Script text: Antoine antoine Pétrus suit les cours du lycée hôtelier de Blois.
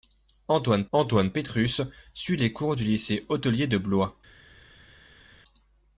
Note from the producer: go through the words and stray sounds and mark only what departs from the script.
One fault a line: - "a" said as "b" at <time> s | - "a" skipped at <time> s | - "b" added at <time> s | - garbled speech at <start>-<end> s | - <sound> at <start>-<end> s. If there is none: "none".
none